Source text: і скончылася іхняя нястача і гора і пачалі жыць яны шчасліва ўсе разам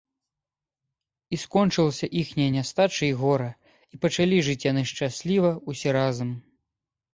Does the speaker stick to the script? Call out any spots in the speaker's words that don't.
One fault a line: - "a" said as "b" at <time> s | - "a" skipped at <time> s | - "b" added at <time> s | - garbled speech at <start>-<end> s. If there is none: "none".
none